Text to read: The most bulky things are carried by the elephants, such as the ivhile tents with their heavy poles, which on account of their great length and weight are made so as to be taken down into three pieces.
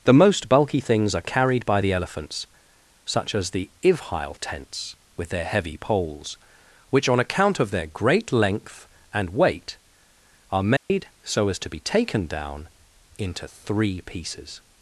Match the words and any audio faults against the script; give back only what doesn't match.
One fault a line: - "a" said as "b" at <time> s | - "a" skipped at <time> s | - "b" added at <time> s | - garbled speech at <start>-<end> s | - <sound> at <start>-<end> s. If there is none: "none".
- dropout at 10.8-10.9 s